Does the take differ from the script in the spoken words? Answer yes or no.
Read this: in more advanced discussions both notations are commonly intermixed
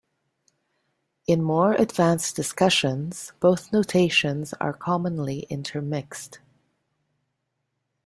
no